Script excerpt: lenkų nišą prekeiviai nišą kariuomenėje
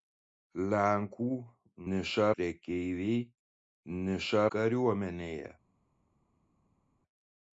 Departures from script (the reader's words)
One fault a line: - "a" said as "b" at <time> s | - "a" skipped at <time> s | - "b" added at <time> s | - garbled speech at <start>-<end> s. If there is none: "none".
none